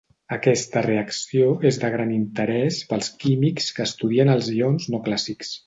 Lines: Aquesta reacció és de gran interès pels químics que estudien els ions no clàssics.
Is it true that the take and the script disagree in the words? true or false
false